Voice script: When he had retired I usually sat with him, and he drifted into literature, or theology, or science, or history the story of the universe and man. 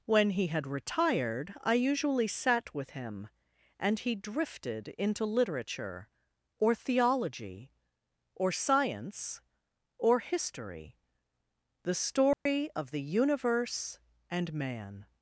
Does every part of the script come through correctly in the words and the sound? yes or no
no